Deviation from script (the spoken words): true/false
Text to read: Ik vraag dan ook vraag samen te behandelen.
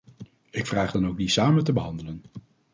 true